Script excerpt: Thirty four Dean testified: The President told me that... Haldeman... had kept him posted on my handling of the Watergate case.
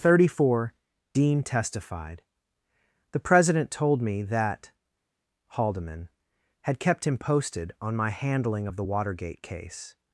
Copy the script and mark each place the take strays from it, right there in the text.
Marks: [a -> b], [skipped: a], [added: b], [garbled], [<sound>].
Thirty four Dean testified: The President told me that... Haldeman... had kept him posted on my handling of the Watergate case.